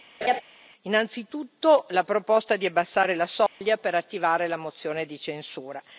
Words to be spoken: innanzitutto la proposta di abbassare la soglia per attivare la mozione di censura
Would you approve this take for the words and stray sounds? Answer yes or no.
no